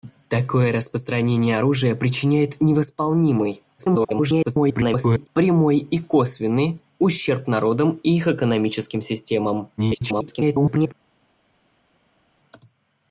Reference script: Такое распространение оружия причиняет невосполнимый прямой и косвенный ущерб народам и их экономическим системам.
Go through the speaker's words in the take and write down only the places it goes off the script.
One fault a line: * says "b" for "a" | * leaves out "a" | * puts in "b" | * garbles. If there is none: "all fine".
* garbles
* garbles